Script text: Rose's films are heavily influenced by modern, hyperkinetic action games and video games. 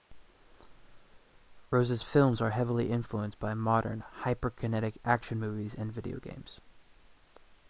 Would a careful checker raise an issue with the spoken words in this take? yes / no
yes